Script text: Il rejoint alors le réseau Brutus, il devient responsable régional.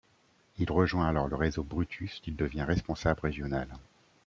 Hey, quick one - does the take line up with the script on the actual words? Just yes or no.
yes